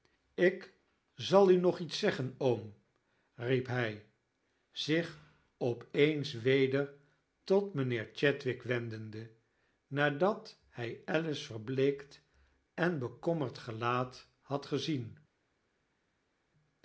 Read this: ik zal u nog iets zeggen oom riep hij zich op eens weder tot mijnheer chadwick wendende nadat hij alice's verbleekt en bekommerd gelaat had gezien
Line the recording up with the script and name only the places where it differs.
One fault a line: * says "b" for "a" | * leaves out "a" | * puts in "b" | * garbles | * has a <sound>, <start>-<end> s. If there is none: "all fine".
all fine